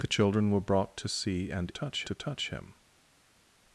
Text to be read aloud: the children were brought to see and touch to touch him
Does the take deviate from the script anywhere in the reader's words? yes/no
no